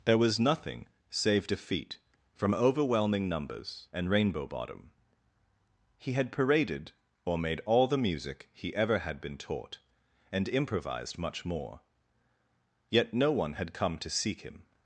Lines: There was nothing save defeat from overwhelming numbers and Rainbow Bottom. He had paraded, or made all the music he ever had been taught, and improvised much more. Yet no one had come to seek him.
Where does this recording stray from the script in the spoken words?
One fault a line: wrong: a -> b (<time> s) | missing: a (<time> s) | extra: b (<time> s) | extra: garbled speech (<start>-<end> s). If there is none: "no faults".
no faults